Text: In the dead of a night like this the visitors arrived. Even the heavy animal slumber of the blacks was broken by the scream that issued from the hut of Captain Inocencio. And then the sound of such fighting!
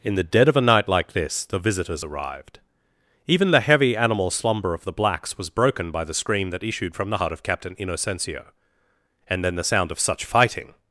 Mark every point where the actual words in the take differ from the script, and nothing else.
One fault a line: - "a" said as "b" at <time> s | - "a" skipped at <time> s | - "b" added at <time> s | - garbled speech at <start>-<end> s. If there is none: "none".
none